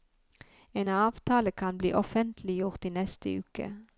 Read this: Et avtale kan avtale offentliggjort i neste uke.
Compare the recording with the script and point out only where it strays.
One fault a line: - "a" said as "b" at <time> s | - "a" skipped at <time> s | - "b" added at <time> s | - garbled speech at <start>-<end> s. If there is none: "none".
- "Et" said as "En" at 0.7 s
- "avtale" said as "bli" at 1.8 s